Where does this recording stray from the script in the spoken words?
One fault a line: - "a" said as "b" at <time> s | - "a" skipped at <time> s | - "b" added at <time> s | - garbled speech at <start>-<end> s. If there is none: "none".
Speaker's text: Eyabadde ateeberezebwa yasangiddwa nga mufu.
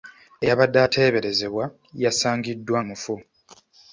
- "nga" skipped at 2.8 s